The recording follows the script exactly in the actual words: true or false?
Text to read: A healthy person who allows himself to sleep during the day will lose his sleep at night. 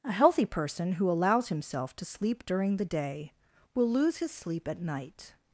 true